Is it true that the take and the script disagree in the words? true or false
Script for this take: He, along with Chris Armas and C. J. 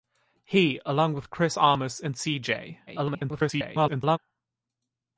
true